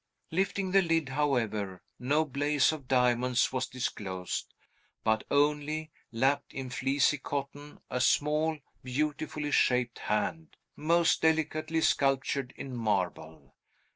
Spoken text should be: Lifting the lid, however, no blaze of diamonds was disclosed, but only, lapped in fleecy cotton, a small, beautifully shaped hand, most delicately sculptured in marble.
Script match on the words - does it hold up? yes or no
yes